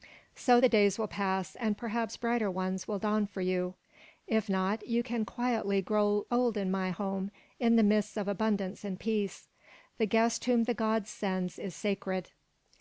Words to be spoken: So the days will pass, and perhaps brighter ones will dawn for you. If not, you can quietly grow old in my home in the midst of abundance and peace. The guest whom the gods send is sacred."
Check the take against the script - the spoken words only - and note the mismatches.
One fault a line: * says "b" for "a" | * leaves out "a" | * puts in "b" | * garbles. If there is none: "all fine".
all fine